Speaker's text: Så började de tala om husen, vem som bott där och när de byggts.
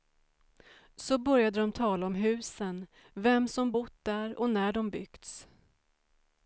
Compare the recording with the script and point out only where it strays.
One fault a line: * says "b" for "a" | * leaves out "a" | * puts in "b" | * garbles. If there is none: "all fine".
all fine